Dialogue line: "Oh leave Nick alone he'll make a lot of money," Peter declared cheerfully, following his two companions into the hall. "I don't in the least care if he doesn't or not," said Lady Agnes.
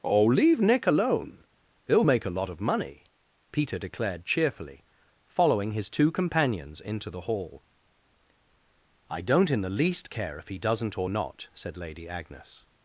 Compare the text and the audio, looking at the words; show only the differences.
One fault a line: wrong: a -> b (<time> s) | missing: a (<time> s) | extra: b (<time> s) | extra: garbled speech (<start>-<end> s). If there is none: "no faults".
no faults